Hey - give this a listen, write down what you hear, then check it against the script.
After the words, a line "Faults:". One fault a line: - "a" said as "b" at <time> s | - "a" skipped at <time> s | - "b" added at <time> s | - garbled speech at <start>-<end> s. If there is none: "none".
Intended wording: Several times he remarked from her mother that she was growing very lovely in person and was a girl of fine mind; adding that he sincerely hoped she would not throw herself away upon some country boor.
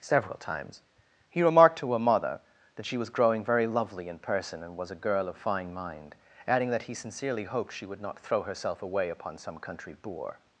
Several times he remarked to her mother that she was growing very lovely in person and was a girl of fine mind; adding that he sincerely hoped she would not throw herself away upon some country boor.
Faults:
- "from" said as "to" at 1.8 s